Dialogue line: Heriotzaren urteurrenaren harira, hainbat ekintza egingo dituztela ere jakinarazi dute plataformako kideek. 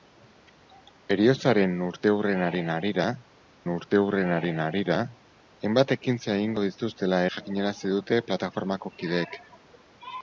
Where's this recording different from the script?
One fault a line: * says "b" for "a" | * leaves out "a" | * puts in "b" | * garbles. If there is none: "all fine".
* puts in "urteurrenaren harira"
* leaves out "ere"